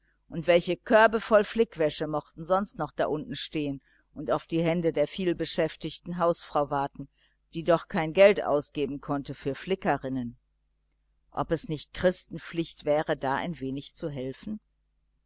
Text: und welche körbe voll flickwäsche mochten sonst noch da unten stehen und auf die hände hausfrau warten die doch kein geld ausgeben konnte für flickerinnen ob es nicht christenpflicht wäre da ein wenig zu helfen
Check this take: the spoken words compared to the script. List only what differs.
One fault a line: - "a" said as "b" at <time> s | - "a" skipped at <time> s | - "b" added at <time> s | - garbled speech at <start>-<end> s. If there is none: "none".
- "der vielbeschäftigten" added at 4.9 s